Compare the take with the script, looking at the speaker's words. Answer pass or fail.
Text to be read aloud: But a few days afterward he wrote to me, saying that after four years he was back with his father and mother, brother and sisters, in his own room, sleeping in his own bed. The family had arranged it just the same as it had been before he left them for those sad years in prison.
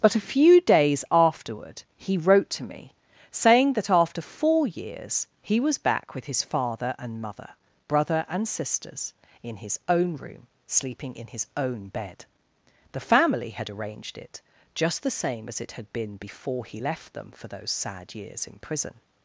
pass